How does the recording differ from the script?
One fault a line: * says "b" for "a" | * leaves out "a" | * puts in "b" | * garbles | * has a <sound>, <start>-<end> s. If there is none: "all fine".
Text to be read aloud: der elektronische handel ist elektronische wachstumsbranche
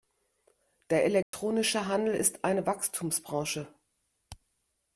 * has a dropout, 1.2-1.3 s
* says "eine" for "elektronische"